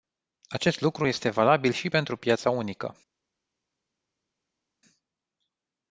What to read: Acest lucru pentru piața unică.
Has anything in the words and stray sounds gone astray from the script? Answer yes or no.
yes